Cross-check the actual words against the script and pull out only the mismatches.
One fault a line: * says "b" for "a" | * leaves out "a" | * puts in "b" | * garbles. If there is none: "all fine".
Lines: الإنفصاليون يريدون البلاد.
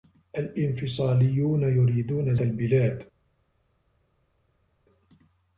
all fine